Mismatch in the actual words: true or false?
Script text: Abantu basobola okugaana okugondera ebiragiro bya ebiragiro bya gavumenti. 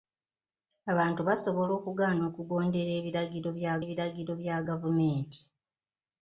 false